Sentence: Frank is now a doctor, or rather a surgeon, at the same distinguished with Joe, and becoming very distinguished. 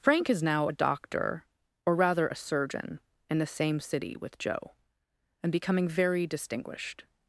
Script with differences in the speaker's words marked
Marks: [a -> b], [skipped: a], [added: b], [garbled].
Frank is now a doctor, or rather a surgeon, [at -> in] the same [distinguished -> city] with Joe, and becoming very distinguished.